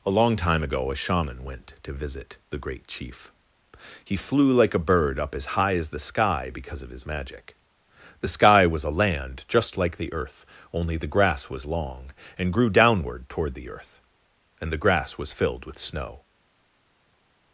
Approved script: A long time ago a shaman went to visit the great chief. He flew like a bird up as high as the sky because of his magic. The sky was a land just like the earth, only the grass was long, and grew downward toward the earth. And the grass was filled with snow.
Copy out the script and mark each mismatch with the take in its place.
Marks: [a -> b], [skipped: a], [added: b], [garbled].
A long time ago a shaman went to visit the great chief. He flew like a bird up as high as the sky because of his magic. The sky was a land just like the earth, only the grass was long, and grew downward toward the earth. And the grass was filled with snow.